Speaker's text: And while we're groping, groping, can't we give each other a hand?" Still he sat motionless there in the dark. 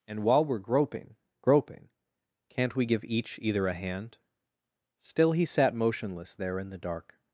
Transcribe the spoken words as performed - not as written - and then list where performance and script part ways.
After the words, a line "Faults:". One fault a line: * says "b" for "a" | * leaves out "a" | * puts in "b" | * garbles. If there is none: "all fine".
And while we're groping, groping, can't we give each either a hand?" Still he sat motionless there in the dark.
Faults:
* says "either" for "other"